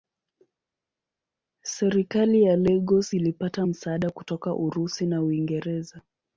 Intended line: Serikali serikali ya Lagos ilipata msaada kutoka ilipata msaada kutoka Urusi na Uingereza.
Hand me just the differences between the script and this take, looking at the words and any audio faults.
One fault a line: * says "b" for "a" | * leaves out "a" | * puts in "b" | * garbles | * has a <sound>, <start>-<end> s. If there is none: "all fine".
* leaves out "serikali"
* leaves out "ilipata msaada kutoka"